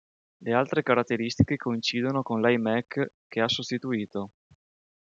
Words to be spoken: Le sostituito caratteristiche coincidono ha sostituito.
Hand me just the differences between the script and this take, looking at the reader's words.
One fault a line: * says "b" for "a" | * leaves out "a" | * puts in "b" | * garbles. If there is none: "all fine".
* says "altre" for "sostituito"
* puts in "con l'iMac che"